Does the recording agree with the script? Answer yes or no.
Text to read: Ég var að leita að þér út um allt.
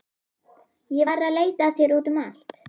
yes